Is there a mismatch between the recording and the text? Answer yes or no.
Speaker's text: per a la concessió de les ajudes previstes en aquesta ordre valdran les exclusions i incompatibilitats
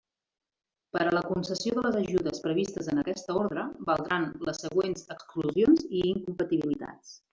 yes